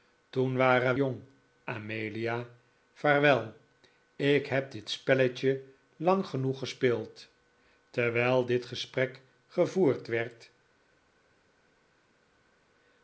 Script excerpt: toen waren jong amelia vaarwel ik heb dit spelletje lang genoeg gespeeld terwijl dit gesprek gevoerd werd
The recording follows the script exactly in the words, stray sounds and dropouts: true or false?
true